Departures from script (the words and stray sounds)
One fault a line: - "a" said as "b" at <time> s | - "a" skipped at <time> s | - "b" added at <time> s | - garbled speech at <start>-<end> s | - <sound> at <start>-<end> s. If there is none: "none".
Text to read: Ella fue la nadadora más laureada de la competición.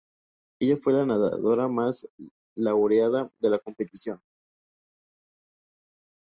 none